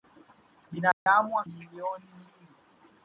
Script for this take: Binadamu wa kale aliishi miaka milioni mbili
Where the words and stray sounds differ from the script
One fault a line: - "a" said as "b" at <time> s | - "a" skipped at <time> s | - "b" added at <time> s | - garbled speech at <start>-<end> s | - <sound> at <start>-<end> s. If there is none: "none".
- dropout at 0.9-1.1 s
- "kale aliishi miaka" skipped at 1.4 s